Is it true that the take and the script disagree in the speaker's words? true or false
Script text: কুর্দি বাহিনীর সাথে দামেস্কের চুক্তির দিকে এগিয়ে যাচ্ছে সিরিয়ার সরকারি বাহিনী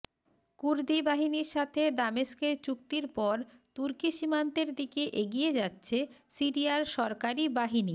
true